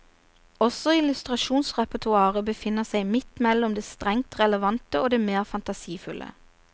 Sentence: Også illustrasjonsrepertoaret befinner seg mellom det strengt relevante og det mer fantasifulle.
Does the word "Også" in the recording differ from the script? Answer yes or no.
no